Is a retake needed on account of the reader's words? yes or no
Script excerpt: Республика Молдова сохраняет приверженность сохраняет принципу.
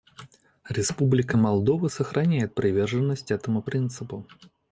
yes